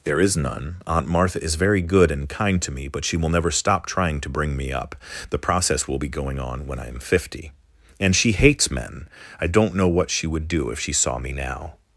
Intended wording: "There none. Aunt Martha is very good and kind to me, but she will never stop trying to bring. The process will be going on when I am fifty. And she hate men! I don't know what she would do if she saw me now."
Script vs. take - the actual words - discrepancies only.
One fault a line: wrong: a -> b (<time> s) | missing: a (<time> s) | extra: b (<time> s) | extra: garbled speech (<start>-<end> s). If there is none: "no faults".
extra: is (0.2 s)
extra: me up (4.6 s)
wrong: hate -> hates (8.3 s)